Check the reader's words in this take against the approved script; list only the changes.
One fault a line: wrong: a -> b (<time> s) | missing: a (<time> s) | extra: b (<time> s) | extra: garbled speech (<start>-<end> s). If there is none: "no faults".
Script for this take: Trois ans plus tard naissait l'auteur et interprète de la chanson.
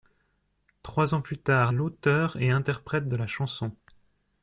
missing: naissait (1.7 s)